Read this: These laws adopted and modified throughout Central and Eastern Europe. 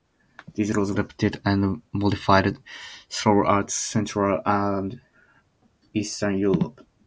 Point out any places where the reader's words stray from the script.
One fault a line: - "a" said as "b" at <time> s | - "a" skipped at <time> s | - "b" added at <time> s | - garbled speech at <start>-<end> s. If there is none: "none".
none